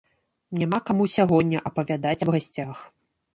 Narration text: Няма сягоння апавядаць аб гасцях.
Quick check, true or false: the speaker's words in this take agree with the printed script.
false